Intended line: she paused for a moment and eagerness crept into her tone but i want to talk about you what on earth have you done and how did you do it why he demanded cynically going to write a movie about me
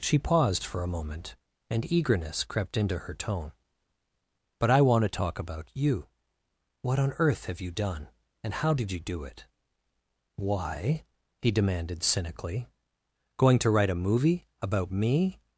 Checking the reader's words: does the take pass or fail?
pass